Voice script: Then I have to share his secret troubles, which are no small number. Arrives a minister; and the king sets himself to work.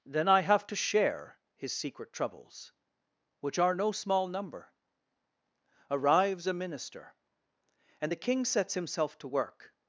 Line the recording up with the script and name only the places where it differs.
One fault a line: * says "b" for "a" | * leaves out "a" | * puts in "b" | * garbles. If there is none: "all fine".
all fine